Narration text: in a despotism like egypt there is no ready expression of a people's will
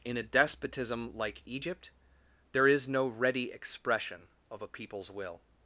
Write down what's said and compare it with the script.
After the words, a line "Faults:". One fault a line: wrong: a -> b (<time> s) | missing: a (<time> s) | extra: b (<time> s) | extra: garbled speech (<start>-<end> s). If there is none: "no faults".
in a despotism like egypt there is no ready expression of a people's will
Faults:
no faults